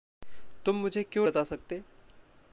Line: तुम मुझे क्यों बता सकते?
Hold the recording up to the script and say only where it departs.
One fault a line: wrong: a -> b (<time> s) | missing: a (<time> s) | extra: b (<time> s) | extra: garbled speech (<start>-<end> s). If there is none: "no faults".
no faults